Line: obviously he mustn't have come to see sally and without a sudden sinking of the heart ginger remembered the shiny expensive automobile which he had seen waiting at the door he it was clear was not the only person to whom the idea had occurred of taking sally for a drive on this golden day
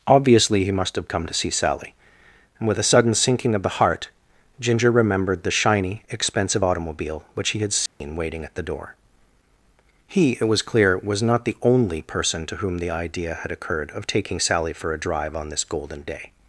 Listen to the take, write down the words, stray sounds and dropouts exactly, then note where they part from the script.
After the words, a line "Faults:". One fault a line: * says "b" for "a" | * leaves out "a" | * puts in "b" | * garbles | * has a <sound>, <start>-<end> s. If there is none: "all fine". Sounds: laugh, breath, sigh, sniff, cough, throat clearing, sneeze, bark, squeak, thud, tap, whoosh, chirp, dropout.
obviously he must have come to see sally and with a sudden sinking of the heart ginger remembered the shiny expensive automobile which he had seen waiting at the door he it was clear was not the only person to whom the idea had occurred of taking sally for a drive on this golden day
Faults:
* says "must" for "mustn't"
* says "with" for "without"
* has a dropout, 7.9-8.0 s